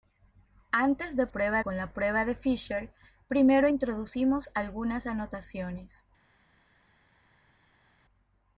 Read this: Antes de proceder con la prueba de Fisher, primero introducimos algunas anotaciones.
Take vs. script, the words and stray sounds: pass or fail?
fail